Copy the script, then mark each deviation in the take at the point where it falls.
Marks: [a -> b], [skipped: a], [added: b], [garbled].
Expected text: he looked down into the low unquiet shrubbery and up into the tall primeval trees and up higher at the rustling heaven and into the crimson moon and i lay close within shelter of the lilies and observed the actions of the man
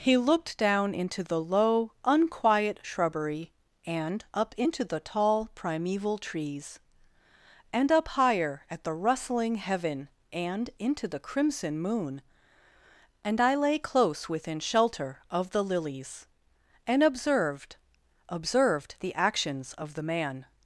he looked down into the low unquiet shrubbery and up into the tall primeval trees and up higher at the rustling heaven and into the crimson moon and i lay close within shelter of the lilies and observed [added: observed] the actions of the man